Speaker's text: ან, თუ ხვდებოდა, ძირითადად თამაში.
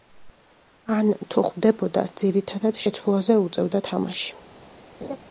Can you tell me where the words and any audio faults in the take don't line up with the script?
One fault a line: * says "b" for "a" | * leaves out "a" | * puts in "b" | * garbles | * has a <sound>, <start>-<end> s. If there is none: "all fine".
* puts in "შეცვლაზე უწევდა"
* has a laugh, 5.0-5.2 s